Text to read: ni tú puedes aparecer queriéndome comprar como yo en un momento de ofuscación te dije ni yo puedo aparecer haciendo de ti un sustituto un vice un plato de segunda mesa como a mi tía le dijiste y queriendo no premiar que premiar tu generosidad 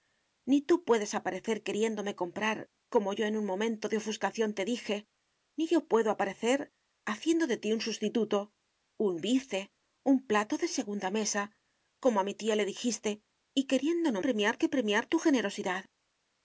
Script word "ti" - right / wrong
right